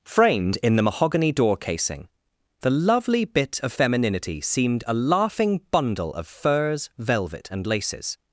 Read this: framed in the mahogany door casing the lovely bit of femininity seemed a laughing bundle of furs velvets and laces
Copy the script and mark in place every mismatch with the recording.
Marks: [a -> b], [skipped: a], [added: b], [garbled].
framed in the mahogany door casing the lovely bit of femininity seemed a laughing bundle of furs [velvets -> velvet] and laces